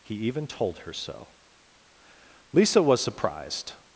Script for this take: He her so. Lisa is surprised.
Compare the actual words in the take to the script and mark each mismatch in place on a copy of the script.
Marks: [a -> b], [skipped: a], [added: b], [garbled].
He [added: even told] her so. Lisa [is -> was] surprised.